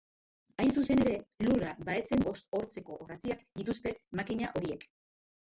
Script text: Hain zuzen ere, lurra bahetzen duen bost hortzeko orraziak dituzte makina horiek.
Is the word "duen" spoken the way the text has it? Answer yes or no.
no